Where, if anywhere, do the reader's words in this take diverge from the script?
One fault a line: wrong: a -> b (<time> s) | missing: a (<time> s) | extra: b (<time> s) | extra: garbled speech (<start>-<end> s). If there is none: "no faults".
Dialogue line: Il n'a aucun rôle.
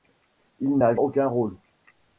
no faults